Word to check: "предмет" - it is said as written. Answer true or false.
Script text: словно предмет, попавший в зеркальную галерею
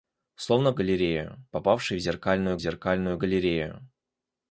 false